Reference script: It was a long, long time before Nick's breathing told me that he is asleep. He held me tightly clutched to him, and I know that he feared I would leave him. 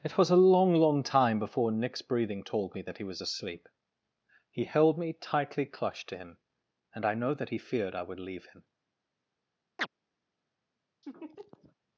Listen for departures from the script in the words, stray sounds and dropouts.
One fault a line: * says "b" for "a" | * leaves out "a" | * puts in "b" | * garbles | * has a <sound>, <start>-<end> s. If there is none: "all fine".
* says "was" for "is"
* has a chirp, 9.8-9.9 s
* has a laugh, 11.0-11.8 s